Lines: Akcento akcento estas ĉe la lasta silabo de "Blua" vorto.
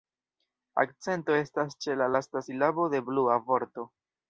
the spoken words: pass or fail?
fail